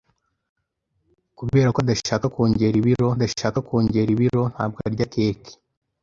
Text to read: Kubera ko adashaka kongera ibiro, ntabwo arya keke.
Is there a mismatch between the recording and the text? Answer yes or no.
yes